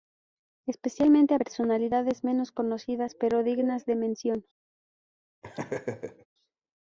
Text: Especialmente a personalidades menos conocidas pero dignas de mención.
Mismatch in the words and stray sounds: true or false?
true